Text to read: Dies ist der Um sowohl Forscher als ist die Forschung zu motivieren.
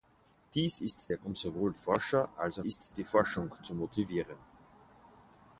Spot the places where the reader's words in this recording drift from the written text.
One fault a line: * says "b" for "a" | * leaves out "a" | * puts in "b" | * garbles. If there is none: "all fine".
all fine